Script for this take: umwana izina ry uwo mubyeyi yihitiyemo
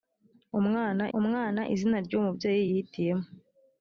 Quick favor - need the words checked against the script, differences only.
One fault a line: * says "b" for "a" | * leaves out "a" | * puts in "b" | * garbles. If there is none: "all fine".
* puts in "umwana"